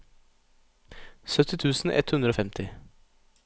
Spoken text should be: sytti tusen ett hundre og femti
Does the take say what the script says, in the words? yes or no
yes